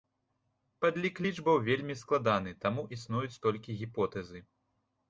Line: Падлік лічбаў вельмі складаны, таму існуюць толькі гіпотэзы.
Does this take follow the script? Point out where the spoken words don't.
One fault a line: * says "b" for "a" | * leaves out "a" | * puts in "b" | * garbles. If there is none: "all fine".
all fine